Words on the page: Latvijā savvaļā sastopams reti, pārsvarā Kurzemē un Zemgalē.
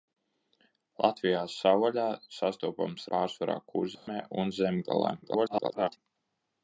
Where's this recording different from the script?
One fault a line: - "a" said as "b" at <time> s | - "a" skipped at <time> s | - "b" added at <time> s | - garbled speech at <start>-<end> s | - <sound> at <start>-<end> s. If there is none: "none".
- "reti" skipped at 3.0 s
- dropout at 4.0-4.1 s
- garbled speech at 5.2-6.0 s